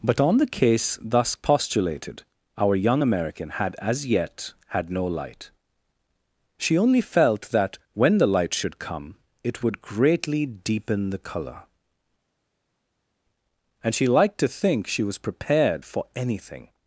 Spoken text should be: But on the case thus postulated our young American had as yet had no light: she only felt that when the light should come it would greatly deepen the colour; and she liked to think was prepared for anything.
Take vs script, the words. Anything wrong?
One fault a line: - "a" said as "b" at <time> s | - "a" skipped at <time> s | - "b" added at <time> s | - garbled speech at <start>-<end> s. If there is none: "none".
- "she" added at 14.9 s